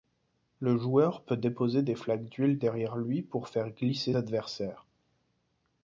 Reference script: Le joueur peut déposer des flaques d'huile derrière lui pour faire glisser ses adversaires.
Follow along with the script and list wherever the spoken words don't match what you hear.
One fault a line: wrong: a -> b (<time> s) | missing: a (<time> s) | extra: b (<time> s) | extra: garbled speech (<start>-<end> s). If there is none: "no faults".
missing: ses (4.2 s)